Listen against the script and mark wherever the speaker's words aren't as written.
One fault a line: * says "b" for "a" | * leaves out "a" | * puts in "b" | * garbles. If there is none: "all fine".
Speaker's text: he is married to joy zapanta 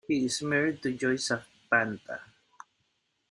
all fine